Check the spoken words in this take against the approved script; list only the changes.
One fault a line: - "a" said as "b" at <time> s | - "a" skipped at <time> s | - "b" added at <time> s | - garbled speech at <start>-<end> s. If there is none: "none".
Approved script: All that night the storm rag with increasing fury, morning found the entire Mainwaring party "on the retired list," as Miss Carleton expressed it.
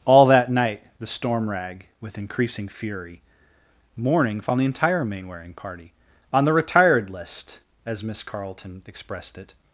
none